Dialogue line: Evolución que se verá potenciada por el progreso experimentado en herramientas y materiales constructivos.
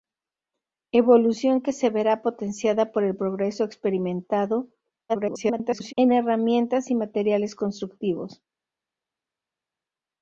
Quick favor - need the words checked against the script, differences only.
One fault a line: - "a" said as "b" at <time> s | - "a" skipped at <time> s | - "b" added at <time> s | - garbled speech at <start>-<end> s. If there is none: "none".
- garbled speech at 5.1-5.9 s